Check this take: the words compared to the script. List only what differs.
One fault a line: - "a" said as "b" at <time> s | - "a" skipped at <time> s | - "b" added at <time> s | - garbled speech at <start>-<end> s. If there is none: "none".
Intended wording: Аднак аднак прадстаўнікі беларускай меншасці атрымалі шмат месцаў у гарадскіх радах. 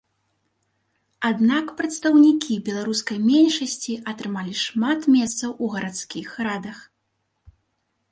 - "аднак" skipped at 1.6 s